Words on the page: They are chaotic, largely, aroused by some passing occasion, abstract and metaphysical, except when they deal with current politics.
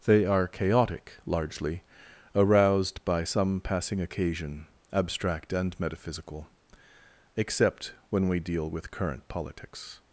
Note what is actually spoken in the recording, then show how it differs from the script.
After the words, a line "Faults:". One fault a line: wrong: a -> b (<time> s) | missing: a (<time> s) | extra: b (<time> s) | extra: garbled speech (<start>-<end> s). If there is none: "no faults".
They are chaotic, largely, aroused by some passing occasion, abstract and metaphysical, except when we deal with current politics.
Faults:
wrong: they -> we (8.3 s)